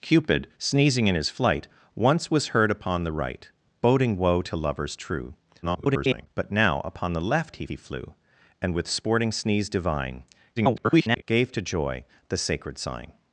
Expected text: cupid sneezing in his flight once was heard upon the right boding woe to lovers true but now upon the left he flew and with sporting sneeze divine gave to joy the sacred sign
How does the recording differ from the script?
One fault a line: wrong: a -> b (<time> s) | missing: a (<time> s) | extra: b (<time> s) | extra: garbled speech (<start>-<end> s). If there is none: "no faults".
extra: garbled speech (5.6-6.3 s)
extra: he (7.7 s)
extra: garbled speech (10.6-11.2 s)